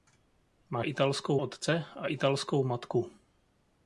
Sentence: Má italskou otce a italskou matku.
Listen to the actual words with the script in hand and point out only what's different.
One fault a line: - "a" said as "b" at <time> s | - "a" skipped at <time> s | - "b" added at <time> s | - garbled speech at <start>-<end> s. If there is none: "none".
none